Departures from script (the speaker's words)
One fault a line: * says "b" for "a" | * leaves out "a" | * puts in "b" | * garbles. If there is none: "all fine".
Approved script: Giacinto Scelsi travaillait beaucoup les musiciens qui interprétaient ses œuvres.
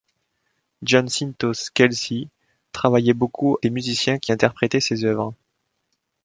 all fine